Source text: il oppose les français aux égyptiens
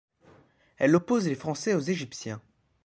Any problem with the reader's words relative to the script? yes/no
yes